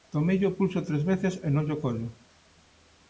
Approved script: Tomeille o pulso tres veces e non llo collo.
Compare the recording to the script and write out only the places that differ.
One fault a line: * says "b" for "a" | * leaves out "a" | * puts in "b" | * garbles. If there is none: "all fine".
all fine